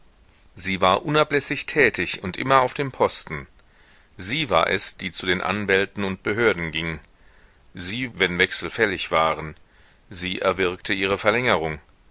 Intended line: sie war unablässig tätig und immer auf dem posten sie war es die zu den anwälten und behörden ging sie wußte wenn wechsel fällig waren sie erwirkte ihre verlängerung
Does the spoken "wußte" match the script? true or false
false